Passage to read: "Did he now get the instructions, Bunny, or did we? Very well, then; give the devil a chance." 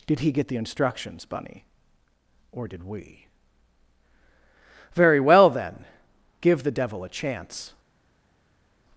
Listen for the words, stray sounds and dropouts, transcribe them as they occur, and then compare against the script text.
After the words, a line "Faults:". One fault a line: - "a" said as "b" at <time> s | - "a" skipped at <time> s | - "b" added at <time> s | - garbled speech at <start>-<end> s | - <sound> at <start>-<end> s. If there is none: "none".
"Did he get the instructions, Bunny, or did we? Very well, then; give the devil a chance."
Faults:
- "now" skipped at 0.3 s